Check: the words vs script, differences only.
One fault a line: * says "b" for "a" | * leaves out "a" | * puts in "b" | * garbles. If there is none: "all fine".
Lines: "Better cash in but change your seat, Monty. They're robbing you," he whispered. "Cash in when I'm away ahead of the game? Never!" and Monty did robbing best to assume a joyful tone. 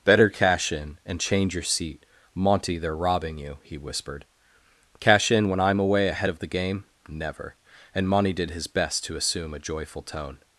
* says "and" for "but"
* says "his" for "robbing"